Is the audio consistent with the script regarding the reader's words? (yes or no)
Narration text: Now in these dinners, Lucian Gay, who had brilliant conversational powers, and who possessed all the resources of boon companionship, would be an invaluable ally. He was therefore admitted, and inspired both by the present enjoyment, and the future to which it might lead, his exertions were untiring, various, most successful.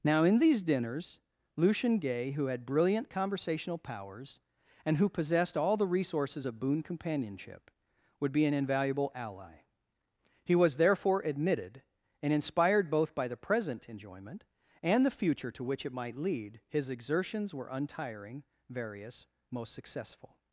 yes